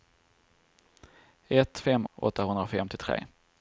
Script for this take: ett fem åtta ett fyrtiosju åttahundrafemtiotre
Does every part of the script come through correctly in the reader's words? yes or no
no